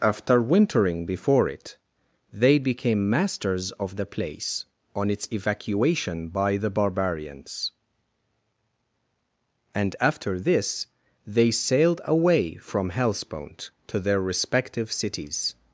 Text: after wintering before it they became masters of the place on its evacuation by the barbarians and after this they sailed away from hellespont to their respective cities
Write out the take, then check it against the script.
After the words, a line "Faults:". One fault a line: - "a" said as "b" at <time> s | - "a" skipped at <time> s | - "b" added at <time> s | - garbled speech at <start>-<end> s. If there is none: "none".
after wintering before it they became masters of the place on its evacuation by the barbarians and after this they sailed away from hellespont to their respective cities
Faults:
none